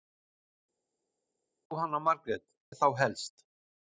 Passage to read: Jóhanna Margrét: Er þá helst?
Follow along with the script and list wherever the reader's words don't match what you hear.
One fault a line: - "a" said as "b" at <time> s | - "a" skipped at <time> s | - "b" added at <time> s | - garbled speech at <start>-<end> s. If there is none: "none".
none